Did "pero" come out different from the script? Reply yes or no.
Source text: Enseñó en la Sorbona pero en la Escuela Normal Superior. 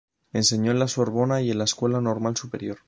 yes